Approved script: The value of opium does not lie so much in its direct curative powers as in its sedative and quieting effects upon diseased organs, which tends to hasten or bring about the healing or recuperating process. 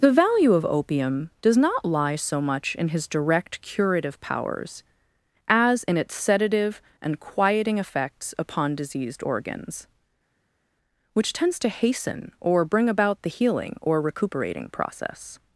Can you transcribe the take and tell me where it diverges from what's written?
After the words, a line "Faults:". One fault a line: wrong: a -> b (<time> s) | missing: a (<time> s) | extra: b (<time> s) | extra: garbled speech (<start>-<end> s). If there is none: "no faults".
The value of opium does not lie so much in his direct curative powers as in its sedative and quieting effects upon diseased organs, which tends to hasten or bring about the healing or recuperating process.
Faults:
wrong: its -> his (2.9 s)